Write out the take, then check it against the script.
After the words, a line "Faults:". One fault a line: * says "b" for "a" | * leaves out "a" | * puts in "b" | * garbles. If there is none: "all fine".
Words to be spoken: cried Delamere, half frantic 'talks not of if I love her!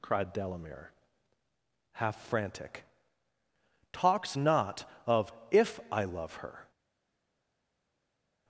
cried Delamere, half frantic 'talks not of if I love her!
Faults:
all fine